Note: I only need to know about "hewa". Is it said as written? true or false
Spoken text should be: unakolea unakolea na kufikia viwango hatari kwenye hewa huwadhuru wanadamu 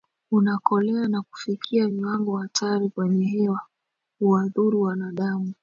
true